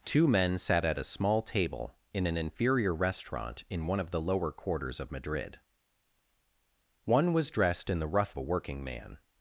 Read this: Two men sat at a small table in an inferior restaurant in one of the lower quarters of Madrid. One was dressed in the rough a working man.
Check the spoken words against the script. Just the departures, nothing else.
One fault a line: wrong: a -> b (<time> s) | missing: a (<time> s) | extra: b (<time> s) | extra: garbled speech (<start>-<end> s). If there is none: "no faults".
no faults